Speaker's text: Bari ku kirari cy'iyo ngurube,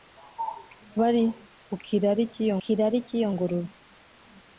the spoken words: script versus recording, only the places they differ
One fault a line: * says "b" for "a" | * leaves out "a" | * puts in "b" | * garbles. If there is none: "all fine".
* puts in "kirari cy'iyo"